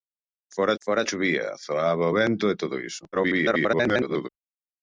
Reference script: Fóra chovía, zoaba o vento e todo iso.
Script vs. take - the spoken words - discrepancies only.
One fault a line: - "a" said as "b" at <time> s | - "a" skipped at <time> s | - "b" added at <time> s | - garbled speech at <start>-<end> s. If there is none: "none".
- "fóra" added at 0.8 s
- garbled speech at 3.1-4.3 s